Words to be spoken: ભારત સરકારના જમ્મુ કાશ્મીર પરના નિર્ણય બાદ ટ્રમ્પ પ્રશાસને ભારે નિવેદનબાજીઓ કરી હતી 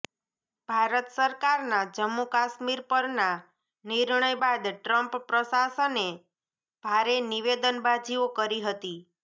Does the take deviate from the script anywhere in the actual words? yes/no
no